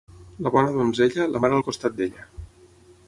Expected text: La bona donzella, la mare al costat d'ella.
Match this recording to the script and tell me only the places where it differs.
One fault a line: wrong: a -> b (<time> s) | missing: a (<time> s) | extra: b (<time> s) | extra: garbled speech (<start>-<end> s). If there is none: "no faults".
no faults